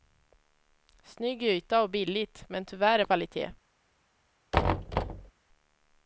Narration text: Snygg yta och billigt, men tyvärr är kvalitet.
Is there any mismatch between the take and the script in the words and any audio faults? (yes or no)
yes